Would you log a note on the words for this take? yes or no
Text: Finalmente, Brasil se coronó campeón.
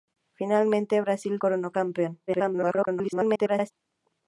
yes